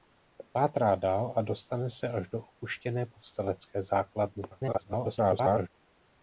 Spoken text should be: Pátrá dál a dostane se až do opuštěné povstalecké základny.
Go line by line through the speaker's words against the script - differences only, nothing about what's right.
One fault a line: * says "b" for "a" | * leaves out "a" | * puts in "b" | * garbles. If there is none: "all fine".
* garbles